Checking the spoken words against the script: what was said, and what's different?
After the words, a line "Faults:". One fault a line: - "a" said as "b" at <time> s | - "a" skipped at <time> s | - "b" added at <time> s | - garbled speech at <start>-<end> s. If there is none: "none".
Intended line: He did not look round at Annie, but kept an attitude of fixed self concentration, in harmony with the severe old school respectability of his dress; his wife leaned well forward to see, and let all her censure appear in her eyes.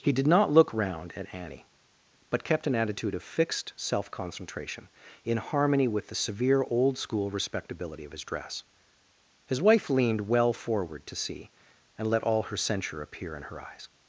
He did not look round at Annie, but kept an attitude of fixed self concentration, in harmony with the severe old school respectability of his dress; his wife leaned well forward to see, and let all her censure appear in her eyes.
Faults:
none